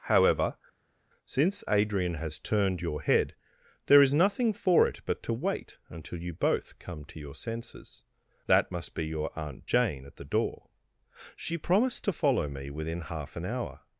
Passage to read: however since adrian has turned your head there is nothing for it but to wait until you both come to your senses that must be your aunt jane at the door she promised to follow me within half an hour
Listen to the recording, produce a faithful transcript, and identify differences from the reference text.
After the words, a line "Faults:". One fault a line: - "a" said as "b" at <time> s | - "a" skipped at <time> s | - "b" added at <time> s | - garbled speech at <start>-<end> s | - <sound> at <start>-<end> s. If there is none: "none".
however since adrian has turned your head there is nothing for it but to wait until you both come to your senses that must be your aunt jane at the door she promised to follow me within half an hour
Faults:
none